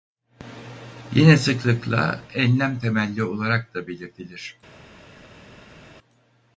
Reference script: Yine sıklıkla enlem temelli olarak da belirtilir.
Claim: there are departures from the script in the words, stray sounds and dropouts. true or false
false